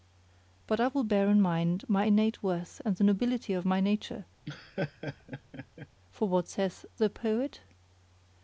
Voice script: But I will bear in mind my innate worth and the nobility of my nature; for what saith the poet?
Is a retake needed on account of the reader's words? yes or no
no